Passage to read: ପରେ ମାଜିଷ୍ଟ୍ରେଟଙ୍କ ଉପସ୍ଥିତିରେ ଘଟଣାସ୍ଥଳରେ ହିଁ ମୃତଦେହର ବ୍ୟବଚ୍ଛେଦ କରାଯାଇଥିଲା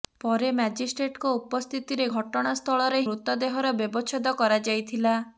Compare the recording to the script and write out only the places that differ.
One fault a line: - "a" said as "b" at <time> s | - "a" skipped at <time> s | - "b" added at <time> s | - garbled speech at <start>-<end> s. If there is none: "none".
- "ହିଁ" skipped at 3.0 s